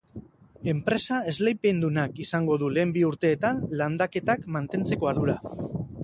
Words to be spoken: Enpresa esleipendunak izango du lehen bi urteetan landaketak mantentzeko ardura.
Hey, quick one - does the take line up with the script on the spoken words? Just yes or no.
yes